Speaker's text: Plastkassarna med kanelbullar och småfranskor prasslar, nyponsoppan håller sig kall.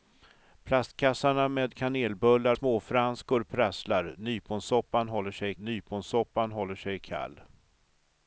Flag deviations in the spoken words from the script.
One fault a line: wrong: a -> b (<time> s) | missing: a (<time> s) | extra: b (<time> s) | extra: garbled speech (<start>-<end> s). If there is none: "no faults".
missing: och (2.6 s)
extra: nyponsoppan håller sig (5.6 s)